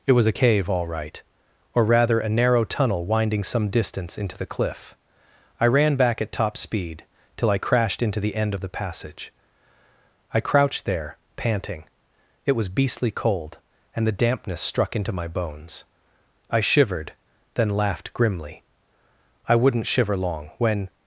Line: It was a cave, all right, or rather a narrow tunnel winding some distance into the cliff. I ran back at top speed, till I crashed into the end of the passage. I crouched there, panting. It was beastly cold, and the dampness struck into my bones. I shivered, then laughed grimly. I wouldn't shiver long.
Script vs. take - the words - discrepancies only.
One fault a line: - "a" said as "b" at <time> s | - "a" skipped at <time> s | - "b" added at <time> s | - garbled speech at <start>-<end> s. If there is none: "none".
- "When" added at 20.6 s